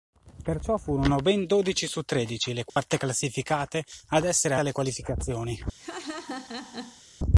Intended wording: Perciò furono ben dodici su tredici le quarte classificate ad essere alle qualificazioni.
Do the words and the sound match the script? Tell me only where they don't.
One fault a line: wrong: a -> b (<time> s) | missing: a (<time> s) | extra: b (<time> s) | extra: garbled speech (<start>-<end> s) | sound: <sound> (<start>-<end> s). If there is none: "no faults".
sound: dropout (2.7-2.8 s)
sound: laugh (5.8-7.0 s)